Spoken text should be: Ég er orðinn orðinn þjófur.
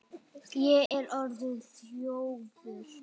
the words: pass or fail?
fail